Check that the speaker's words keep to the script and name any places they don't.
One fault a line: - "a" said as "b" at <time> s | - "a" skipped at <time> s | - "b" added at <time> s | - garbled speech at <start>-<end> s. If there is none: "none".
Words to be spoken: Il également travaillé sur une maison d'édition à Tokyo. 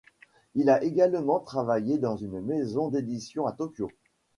- "a" added at 0.7 s
- "sur" said as "dans" at 2.0 s